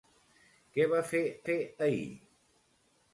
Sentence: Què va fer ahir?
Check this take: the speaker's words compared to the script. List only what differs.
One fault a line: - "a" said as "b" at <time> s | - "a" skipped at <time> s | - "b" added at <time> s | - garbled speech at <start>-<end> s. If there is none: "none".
- "fer" added at 1.5 s